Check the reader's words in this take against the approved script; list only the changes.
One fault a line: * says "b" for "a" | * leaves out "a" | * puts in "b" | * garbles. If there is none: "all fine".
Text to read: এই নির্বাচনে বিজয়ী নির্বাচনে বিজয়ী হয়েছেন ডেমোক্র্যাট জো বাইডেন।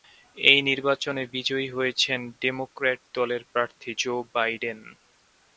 * says "হয়েছেন ডেমোক্র্যাট দলের প্রার্থী" for "নির্বাচনে বিজয়ী হয়েছেন ডেমোক্র্যাট"